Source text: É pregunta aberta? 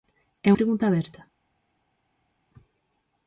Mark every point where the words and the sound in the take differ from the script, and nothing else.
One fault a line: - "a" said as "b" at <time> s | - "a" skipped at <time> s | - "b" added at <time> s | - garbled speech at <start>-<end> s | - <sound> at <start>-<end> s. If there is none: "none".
none